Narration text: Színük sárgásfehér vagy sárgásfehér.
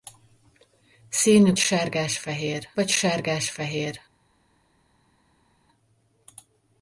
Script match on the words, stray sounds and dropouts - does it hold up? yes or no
yes